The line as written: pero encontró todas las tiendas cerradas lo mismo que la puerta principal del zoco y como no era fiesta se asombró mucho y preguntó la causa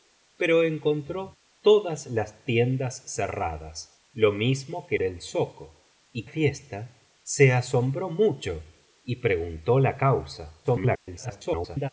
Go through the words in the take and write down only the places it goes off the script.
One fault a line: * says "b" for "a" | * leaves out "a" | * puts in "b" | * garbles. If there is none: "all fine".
* leaves out "la puerta principal"
* leaves out "como no era"
* garbles